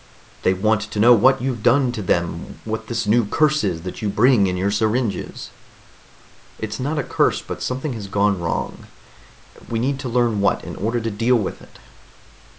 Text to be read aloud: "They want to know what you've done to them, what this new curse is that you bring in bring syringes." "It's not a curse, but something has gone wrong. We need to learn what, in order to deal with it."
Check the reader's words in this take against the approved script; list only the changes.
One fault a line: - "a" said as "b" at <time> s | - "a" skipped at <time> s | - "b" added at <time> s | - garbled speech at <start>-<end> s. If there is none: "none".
- "bring" said as "your" at 4.6 s